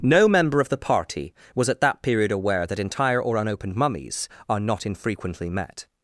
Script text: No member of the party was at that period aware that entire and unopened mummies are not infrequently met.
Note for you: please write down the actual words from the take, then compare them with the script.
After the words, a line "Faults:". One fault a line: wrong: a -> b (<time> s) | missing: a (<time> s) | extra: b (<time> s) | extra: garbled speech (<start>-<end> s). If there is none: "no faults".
No member of the party was at that period aware that entire or unopened mummies are not infrequently met.
Faults:
wrong: and -> or (3.2 s)